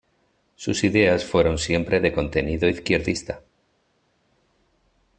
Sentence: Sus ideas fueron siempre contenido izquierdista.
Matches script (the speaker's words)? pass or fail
fail